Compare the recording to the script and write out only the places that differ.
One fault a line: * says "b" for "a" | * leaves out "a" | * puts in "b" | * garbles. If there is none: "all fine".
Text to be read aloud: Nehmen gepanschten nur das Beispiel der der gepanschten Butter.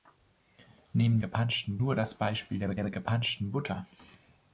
all fine